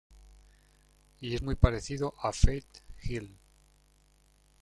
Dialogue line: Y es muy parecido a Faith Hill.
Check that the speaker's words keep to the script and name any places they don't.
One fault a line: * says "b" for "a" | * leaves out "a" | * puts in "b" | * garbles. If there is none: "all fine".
all fine